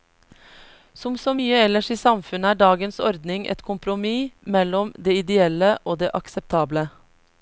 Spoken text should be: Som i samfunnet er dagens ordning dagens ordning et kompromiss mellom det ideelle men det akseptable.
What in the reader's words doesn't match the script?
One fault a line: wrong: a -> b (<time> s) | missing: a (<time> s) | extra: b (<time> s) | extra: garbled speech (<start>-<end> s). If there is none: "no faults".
extra: så mye ellers (1.2 s)
missing: dagens ordning (3.5 s)
wrong: men -> og (5.9 s)